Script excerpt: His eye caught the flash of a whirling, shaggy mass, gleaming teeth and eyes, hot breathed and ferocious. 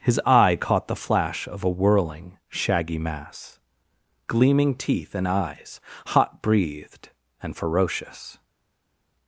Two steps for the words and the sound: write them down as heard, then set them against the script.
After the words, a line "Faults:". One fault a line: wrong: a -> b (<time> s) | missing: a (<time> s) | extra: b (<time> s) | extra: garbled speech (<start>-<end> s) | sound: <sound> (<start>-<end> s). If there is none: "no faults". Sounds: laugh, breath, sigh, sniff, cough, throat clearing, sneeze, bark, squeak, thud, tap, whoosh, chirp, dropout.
His eye caught the flash of a whirling, shaggy mass, gleaming teeth and eyes, hot breathed and ferocious.
Faults:
no faults